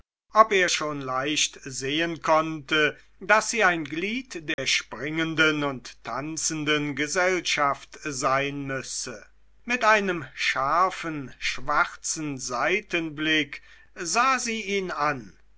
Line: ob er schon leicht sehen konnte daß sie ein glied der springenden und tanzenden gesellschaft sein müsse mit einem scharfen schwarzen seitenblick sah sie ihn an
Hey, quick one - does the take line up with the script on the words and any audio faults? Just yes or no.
no